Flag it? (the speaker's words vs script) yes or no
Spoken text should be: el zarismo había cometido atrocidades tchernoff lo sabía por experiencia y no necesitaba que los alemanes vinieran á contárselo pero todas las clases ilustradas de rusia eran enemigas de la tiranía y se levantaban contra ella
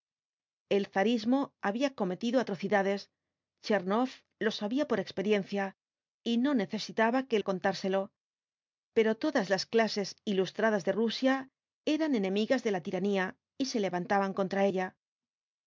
yes